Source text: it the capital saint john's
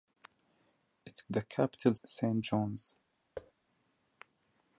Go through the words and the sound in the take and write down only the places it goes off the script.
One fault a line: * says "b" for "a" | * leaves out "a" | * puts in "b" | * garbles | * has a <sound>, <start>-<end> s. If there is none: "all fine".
* has a thud, 3.4-3.5 s